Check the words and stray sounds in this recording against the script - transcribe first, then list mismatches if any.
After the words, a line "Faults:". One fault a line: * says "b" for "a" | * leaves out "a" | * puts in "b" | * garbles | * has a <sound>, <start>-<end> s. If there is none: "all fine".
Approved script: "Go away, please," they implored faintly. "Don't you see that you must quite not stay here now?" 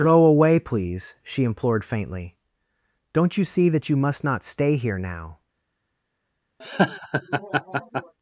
"Go away, please," she implored faintly. "Don't you see that you must not stay here now?"
Faults:
* says "she" for "they"
* leaves out "quite"
* has a laugh, 6.6-8.1 s